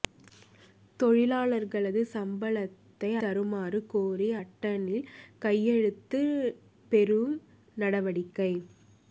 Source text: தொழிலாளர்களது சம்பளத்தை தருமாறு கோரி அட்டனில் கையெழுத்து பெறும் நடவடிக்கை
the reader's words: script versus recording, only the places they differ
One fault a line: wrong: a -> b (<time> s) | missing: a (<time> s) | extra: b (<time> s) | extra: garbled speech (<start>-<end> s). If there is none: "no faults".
no faults